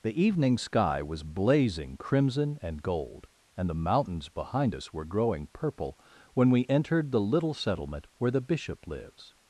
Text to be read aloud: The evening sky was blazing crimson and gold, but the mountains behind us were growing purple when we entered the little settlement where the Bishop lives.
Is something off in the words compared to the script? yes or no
yes